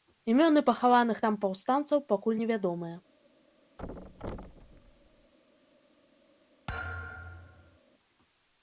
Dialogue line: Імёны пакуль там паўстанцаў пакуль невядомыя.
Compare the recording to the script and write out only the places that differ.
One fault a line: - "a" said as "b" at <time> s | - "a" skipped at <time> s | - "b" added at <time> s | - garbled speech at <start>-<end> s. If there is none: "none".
- "пакуль" said as "пахаваных" at 0.7 s